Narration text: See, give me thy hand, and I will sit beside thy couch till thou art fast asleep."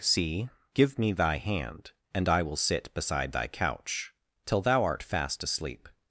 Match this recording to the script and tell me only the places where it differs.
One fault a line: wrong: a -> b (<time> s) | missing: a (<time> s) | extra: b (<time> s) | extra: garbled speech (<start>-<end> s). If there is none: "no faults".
no faults